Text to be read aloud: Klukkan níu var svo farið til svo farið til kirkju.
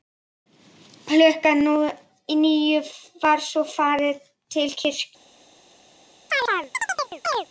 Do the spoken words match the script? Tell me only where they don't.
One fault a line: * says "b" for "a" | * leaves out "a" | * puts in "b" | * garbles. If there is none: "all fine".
* leaves out "svo farið til"